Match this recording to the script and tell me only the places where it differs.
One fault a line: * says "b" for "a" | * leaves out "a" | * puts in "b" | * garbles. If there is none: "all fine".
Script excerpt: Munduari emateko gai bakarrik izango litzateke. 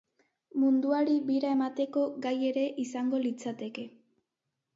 * puts in "bira"
* says "ere" for "bakarrik"